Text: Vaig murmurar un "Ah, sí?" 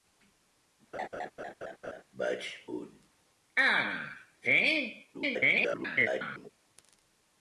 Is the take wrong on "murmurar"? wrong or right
wrong